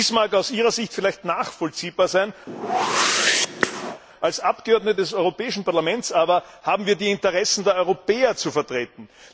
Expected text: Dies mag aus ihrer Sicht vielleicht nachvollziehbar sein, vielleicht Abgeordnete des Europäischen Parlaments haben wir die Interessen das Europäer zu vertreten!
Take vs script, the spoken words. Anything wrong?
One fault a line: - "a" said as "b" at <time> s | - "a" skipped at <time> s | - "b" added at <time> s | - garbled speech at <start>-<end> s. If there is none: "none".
- "vielleicht" said as "als" at 4.2 s
- "aber" added at 6.1 s
- "das" said as "der" at 7.6 s